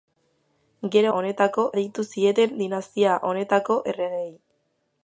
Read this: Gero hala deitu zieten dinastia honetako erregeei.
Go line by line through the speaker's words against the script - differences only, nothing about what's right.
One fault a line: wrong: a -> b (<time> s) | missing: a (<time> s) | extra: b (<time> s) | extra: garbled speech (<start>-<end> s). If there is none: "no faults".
wrong: hala -> honetako (1.2 s)